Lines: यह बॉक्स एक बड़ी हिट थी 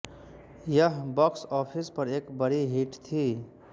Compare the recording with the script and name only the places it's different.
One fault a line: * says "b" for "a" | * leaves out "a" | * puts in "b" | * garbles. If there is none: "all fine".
* puts in "ऑफिस पर"